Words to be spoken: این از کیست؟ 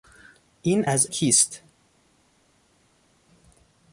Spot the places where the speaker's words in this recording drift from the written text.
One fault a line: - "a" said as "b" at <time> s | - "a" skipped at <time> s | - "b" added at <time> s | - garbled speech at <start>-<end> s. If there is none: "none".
none